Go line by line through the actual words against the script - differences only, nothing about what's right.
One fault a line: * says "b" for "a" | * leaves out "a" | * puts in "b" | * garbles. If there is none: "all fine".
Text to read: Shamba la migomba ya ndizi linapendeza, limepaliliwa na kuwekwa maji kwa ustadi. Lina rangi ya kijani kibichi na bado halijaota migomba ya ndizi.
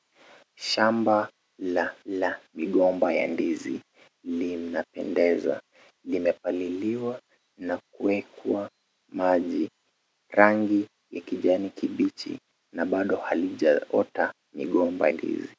* puts in "la"
* leaves out "kwa ustadi Lina"
* leaves out "ya"